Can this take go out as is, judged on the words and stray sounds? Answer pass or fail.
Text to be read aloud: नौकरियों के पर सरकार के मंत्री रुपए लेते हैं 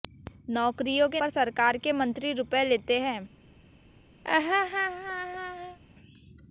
fail